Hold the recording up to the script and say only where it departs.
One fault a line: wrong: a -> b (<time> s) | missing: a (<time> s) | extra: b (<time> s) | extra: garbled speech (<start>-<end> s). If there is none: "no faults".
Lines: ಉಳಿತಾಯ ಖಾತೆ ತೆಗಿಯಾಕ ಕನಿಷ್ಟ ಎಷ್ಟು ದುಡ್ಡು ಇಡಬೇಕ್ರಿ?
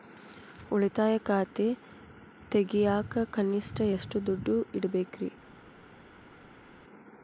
no faults